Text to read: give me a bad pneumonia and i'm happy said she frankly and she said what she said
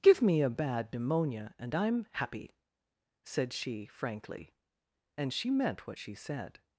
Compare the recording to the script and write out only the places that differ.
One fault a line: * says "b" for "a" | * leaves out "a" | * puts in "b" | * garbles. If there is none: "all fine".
* says "meant" for "said"